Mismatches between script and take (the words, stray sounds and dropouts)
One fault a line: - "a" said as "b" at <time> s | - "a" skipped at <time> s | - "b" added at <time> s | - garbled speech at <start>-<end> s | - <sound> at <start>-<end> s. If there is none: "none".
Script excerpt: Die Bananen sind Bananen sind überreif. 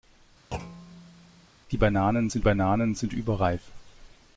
- thud at 0.5-1.5 s